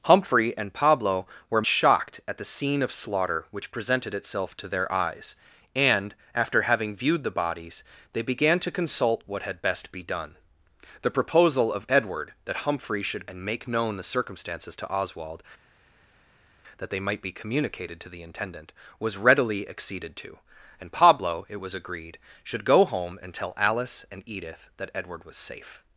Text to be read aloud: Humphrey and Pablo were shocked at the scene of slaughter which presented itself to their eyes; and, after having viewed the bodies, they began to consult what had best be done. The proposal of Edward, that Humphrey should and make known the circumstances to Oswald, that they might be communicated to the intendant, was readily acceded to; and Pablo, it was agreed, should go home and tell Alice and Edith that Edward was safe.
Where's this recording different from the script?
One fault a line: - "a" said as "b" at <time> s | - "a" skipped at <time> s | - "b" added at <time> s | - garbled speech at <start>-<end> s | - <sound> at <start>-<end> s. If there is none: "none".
none